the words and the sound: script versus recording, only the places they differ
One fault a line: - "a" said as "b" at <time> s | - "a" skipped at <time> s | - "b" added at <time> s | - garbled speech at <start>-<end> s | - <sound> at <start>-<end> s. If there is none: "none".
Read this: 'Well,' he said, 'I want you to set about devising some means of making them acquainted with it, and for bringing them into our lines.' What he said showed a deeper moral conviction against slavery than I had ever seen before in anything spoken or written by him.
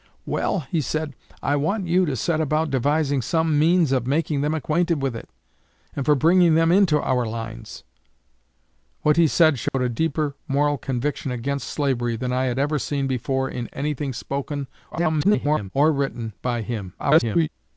- dropout at 9.7-9.7 s
- garbled speech at 14.9-15.7 s
- garbled speech at 17.0-17.5 s